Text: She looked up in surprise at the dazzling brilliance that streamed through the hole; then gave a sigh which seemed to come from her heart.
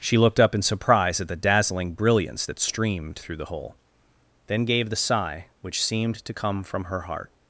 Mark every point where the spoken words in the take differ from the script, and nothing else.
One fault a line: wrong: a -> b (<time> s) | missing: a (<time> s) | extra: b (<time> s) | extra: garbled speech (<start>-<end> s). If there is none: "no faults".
wrong: a -> the (4.9 s)